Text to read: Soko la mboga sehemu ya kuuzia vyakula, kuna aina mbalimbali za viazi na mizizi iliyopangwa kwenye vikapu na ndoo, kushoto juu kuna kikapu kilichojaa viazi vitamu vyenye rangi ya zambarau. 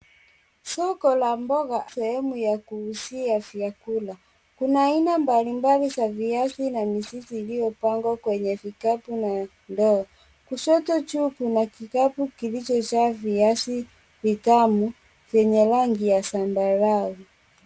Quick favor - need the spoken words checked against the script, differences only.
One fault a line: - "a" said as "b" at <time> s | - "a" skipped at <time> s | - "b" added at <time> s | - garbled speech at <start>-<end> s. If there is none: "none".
none